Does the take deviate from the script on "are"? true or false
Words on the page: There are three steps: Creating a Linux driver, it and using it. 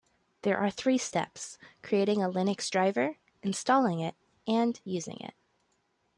false